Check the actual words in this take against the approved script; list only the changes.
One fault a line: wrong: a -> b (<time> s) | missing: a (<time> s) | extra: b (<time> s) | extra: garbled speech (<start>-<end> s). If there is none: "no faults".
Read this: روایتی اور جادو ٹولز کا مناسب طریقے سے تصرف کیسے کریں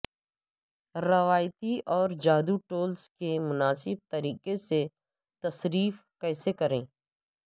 wrong: کا -> کے (3.1 s)